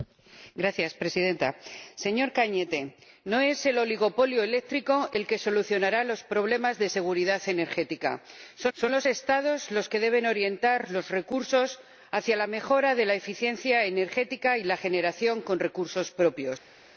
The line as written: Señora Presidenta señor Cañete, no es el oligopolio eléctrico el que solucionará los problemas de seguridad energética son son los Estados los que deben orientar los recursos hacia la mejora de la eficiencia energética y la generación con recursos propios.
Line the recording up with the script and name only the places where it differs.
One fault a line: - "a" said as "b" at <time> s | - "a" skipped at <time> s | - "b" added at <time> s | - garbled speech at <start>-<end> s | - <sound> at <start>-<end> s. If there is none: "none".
none